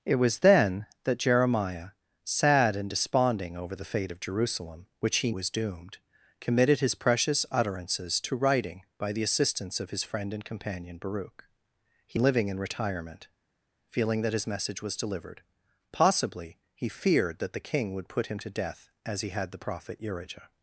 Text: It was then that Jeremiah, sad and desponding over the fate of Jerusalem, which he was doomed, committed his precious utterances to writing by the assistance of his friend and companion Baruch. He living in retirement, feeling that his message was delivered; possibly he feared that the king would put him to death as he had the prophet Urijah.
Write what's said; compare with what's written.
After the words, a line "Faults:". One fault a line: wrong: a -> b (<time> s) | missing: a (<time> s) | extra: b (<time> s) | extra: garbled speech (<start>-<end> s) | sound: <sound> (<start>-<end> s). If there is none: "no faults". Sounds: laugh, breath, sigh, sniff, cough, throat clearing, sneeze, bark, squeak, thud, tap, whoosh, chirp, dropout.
It was then that Jeremiah, sad and desponding over the fate of Jerusalem, which he was doomed, committed his precious utterances to writing by the assistance of his friend and companion Baruch. He living in retirement, feeling that his message was delivered; possibly he feared that the king would put him to death as he had the prophet Urijah.
Faults:
no faults